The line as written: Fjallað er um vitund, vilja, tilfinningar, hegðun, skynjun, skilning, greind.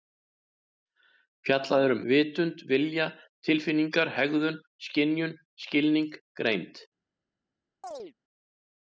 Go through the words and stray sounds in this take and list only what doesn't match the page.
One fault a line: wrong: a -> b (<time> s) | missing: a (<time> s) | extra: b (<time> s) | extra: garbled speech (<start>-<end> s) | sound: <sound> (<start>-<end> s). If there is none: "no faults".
sound: chirp (7.8-8.1 s)